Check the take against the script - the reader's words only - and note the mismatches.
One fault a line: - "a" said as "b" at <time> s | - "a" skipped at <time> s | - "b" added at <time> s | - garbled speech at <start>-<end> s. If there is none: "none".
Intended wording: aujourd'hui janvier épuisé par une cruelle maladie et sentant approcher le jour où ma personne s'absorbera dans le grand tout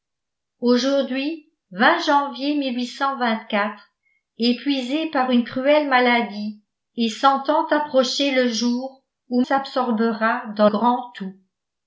- "ma personne" skipped at 9.4 s
- "le" skipped at 10.7 s